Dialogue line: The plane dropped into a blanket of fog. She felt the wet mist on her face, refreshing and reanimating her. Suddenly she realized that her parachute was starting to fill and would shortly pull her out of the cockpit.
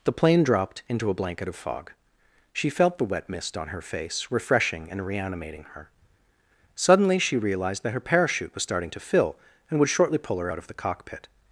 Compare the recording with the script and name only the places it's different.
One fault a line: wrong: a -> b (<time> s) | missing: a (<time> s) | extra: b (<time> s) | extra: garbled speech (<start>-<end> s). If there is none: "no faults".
no faults